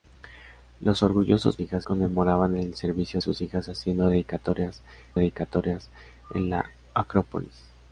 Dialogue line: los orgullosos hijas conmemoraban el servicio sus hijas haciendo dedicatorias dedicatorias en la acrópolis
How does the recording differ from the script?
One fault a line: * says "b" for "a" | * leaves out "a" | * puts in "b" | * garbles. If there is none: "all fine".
all fine